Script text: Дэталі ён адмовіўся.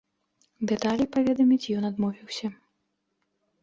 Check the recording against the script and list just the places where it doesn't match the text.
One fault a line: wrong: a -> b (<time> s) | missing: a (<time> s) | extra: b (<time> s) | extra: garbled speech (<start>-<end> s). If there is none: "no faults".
extra: паведаміць (1.2 s)